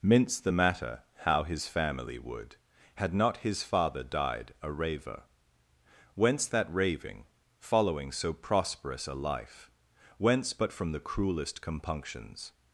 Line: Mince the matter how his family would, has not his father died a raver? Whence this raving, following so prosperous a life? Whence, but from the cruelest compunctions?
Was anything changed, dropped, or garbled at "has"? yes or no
yes